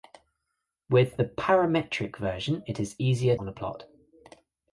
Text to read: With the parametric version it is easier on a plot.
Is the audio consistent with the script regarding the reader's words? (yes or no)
yes